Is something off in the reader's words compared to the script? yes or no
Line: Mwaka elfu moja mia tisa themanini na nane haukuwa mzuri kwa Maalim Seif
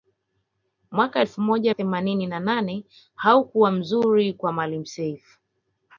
yes